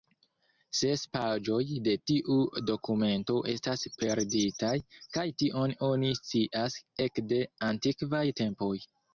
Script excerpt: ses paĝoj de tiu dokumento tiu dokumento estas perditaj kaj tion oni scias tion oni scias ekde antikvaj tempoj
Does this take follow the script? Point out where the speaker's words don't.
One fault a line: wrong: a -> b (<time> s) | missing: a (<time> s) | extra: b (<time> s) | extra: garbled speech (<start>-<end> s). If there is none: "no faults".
missing: tiu dokumento (3.4 s)
missing: tion oni scias (6.8 s)